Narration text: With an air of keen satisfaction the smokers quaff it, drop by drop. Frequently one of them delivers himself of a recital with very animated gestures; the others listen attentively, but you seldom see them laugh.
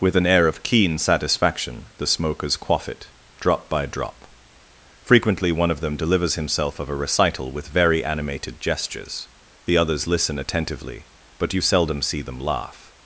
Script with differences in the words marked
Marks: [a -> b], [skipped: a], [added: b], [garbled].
With an air of keen satisfaction the smokers quaff it, drop by drop. Frequently one of them delivers himself of a recital with very animated gestures; the others listen attentively, but you seldom see them laugh.